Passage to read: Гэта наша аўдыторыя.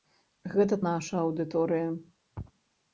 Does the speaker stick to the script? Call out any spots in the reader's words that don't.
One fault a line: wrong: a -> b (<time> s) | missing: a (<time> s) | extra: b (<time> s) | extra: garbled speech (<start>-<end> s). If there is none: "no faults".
no faults